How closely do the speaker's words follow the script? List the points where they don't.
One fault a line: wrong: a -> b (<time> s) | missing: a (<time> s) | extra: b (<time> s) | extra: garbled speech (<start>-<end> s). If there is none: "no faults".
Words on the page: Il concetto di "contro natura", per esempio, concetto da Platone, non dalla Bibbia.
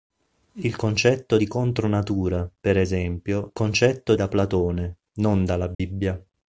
no faults